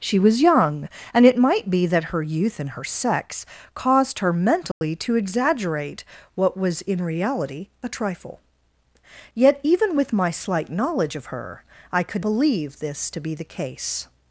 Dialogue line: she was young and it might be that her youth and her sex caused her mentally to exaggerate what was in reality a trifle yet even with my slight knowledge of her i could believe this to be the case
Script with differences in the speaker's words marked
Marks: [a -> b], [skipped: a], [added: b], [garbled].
she was young and it might be that her youth and her sex caused her mentally to exaggerate what was in reality a trifle yet even with my slight knowledge of her i could believe this to be the case